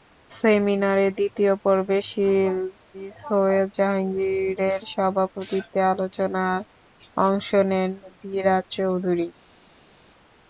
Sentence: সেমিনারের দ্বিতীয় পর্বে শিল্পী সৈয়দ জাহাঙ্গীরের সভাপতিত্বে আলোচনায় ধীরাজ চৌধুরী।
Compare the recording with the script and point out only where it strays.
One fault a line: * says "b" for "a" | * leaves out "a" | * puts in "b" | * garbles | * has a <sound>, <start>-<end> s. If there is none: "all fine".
* puts in "অংশ নেন"